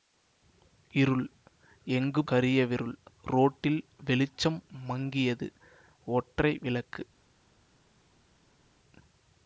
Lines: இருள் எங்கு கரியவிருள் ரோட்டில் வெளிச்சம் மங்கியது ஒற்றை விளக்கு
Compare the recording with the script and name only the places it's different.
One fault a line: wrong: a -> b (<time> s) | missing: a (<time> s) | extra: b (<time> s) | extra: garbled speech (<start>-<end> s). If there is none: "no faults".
no faults